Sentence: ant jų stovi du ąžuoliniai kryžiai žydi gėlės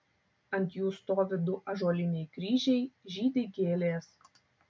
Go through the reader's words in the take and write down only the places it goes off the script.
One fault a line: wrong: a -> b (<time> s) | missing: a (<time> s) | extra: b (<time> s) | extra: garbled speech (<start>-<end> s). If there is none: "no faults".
no faults